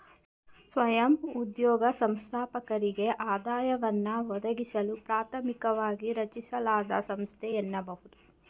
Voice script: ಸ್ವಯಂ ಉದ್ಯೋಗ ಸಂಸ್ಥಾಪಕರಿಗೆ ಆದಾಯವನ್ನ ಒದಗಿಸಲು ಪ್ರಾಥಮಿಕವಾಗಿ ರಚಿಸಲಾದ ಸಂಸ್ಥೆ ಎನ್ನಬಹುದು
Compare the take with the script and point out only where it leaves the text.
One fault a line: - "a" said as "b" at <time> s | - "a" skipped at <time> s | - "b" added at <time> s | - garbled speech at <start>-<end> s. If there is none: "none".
none